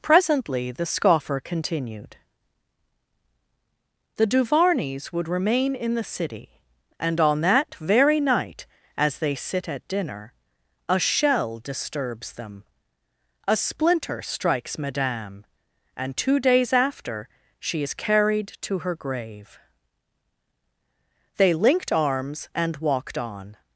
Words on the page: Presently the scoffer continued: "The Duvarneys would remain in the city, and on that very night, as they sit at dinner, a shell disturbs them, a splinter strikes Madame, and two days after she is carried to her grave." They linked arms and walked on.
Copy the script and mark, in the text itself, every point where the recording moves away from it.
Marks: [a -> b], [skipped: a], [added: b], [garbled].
Presently the scoffer continued: "The Duvarneys would remain in the city, and on that very night, as they sit at dinner, a shell disturbs them, a splinter strikes Madame, and two days after she is carried to her grave." They linked arms and walked on.